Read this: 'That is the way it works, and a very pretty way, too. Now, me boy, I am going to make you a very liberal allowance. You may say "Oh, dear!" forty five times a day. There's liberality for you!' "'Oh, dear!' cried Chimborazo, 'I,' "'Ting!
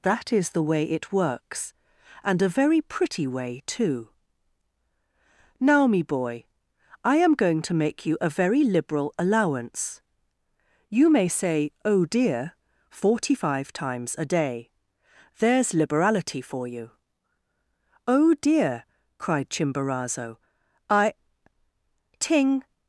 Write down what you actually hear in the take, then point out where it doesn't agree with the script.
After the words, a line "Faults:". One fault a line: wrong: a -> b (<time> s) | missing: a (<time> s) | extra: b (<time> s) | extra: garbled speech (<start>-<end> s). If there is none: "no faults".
'That is the way it works, and a very pretty way, too. Now, me boy, I am going to make you a very liberal allowance. You may say "Oh, dear!" forty five times a day. There's liberality for you!' "'Oh, dear!' cried Chimborazo, 'I,' "'Ting!
Faults:
no faults